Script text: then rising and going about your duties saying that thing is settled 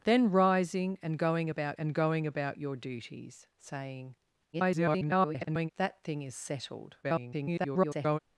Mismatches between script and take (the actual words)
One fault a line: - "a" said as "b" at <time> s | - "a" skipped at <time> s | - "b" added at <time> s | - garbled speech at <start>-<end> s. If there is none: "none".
- "and going about" added at 1.8 s
- garbled speech at 4.5-5.7 s
- garbled speech at 7.0-8.2 s